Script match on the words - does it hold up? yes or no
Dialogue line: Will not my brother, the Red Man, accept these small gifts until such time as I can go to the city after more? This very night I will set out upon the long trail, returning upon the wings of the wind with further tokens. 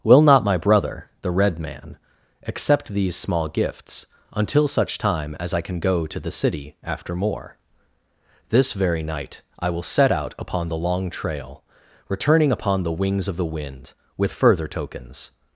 yes